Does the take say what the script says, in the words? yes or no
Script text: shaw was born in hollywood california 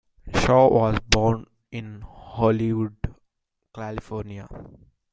yes